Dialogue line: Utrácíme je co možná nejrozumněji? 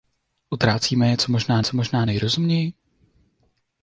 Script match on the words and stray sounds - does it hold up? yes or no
no